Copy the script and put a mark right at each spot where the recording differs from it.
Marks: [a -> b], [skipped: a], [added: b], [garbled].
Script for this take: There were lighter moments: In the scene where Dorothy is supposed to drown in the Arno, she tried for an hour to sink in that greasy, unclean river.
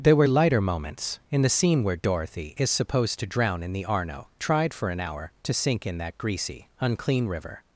There were lighter moments: In the scene where Dorothy is supposed to drown in the Arno, [skipped: she] tried for an hour to sink in that greasy, unclean river.